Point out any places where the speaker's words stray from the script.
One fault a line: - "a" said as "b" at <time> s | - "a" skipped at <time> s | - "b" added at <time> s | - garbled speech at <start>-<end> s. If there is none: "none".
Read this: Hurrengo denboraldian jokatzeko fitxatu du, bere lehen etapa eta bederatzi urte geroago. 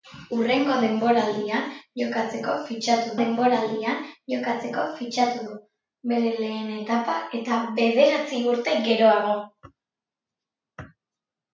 - "denboraldian jokatzeko fitxatu" added at 3.2 s